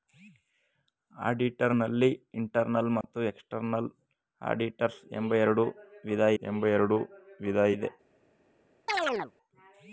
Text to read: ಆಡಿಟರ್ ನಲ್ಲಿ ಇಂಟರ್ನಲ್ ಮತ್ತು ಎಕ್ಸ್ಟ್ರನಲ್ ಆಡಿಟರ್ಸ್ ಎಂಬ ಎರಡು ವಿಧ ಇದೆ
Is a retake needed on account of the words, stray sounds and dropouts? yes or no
yes